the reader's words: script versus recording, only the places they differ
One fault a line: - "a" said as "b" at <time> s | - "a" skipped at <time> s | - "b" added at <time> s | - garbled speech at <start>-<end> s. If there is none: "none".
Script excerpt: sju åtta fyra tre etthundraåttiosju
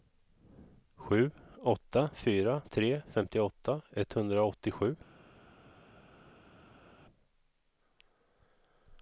- "femtioåtta" added at 3.1 s